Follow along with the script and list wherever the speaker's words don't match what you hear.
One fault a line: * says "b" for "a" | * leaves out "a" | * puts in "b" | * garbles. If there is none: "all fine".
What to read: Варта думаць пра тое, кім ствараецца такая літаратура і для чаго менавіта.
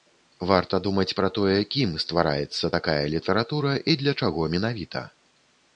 all fine